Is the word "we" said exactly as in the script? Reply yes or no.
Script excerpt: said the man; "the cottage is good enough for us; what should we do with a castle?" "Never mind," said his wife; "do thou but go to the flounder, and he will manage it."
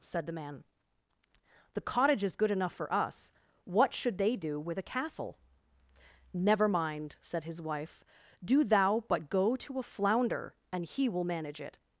no